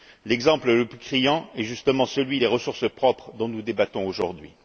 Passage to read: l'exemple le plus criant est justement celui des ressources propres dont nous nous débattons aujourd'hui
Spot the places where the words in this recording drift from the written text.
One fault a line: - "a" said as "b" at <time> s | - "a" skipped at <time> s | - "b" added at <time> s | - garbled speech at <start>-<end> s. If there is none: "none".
- "nous" skipped at 3.6 s